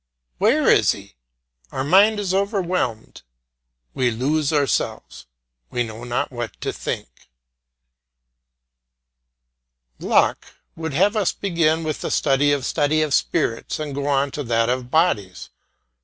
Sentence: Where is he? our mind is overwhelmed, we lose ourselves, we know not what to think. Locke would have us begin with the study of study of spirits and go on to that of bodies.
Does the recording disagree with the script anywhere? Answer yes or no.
no